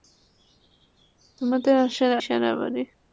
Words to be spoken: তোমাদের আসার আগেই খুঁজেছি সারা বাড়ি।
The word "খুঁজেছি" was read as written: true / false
false